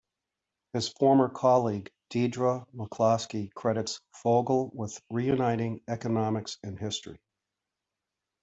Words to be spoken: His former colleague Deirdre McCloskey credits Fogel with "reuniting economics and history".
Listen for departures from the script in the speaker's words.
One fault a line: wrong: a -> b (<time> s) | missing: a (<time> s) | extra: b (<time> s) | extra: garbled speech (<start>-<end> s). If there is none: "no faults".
no faults